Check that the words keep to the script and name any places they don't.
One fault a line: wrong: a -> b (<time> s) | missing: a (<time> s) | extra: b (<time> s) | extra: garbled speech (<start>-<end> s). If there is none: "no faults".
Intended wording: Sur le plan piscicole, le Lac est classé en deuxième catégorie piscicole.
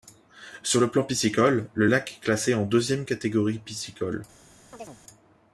no faults